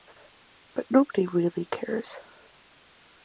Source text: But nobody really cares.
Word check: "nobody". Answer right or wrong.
right